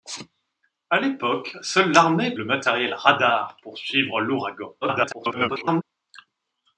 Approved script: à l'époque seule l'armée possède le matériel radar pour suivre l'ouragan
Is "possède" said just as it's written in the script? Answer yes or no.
no